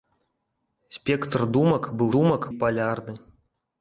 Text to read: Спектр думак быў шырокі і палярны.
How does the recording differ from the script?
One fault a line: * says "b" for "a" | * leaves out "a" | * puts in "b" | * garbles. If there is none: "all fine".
* says "думак" for "шырокі"